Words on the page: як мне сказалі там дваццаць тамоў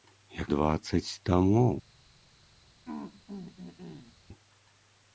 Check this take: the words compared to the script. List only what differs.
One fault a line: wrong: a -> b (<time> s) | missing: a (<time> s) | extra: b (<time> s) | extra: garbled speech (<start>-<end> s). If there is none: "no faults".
missing: мне сказалі там (0.5 s)